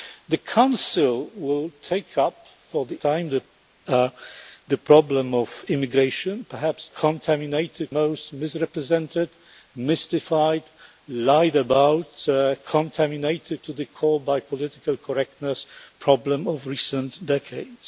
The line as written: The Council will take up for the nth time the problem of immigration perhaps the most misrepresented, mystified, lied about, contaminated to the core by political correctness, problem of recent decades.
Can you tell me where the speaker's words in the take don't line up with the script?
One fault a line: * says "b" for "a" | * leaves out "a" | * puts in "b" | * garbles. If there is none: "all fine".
* leaves out "nth"
* says "contaminated" for "the"